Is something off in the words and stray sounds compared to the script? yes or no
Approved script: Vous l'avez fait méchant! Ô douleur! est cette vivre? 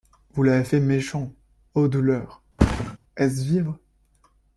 yes